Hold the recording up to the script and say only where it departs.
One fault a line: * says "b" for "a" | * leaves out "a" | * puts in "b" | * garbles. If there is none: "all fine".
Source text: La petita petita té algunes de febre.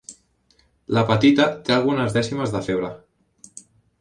* leaves out "petita"
* puts in "dècimes"